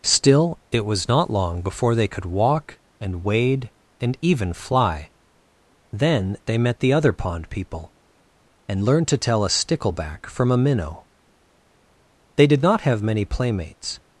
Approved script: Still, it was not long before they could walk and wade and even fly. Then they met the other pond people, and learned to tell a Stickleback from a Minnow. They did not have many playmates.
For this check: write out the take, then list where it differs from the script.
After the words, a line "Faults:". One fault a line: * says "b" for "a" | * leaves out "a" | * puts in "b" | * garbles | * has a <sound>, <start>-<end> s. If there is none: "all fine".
Still, it was not long before they could walk and wade and even fly. Then they met the other pond people, and learned to tell a Stickleback from a Minnow. They did not have many playmates.
Faults:
all fine